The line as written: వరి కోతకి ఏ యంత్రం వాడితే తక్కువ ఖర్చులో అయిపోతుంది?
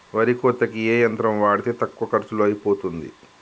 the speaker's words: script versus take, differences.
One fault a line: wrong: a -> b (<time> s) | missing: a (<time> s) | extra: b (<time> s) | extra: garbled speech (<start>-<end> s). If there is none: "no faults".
no faults